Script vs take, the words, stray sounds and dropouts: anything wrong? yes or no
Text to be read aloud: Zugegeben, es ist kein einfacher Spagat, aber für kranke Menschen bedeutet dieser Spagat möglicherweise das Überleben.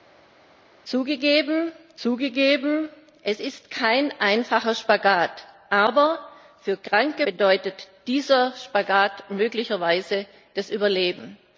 yes